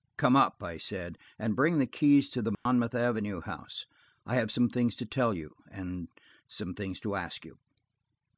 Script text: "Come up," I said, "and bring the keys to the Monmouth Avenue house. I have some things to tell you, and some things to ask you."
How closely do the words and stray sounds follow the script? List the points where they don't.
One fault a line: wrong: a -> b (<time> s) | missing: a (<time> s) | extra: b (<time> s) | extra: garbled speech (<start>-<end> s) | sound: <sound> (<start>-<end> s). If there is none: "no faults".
sound: dropout (2.5-2.7 s)